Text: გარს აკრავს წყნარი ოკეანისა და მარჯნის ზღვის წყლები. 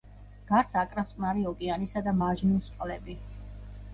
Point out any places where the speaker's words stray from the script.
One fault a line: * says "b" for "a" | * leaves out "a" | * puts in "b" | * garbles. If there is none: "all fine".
* leaves out "ზღვის"